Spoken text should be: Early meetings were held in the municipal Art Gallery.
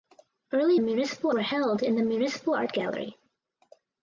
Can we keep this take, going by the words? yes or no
no